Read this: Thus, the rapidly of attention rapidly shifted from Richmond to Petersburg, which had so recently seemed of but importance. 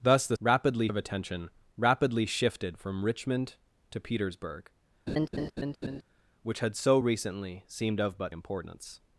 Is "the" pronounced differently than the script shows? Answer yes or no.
no